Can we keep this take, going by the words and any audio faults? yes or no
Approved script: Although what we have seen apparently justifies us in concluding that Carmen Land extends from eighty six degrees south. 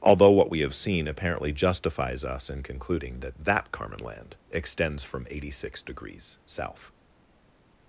no